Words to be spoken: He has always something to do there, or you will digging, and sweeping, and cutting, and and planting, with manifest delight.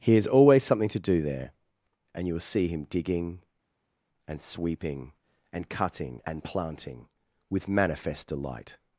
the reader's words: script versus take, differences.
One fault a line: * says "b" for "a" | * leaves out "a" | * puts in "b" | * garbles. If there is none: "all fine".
* says "and" for "or"
* puts in "see him"
* leaves out "and"